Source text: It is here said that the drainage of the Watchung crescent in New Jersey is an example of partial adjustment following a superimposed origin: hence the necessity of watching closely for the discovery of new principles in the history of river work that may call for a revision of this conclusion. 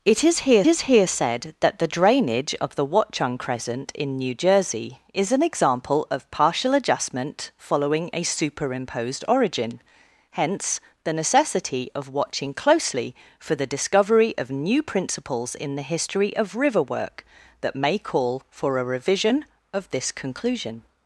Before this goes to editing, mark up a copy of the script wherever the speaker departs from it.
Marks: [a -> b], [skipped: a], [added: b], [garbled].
It is here [added: is here] said that the drainage of the Watchung crescent in New Jersey is an example of partial adjustment following a superimposed origin: hence the necessity of watching closely for the discovery of new principles in the history of river work that may call for a revision of this conclusion.